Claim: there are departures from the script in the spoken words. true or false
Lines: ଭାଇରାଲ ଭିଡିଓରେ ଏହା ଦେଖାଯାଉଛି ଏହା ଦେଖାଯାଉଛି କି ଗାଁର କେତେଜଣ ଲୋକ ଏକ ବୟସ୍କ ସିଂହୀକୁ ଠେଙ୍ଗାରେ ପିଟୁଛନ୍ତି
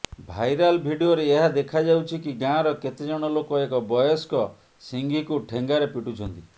true